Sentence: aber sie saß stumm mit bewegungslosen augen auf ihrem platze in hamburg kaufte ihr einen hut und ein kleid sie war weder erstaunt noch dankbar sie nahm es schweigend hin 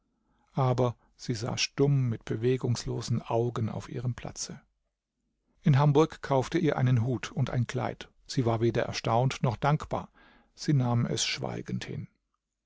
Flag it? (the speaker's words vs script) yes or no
no